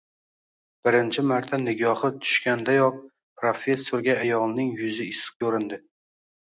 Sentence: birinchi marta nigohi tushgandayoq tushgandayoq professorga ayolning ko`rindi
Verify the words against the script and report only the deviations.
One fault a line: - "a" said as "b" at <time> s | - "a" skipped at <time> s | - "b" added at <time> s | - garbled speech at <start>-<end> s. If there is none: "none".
- "tushgandayoq" skipped at 3.0 s
- "yuzi issiq" added at 4.8 s